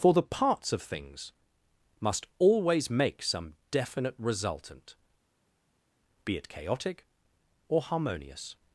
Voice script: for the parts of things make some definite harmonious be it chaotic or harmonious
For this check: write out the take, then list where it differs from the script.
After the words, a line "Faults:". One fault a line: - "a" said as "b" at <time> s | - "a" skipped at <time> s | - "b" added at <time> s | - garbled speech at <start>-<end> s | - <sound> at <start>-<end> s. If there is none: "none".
for the parts of things must always make some definite resultant be it chaotic or harmonious
Faults:
- "must always" added at 2.0 s
- "harmonious" said as "resultant" at 4.2 s